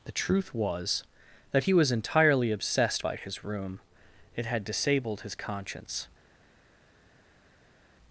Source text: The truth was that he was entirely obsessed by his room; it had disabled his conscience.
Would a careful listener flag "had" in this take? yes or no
no